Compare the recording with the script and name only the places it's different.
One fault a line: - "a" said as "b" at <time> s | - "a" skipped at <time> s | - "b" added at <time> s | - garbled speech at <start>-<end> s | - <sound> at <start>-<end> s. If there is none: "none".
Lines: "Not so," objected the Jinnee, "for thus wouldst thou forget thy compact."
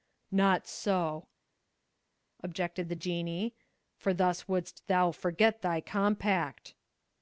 none